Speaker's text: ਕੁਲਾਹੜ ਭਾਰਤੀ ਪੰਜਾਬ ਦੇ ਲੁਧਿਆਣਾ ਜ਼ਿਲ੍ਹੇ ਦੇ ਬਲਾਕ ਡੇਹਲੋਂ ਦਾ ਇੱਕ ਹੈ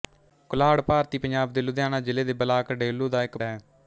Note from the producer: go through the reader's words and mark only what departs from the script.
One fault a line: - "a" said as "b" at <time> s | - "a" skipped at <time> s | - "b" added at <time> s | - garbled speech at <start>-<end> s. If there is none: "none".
none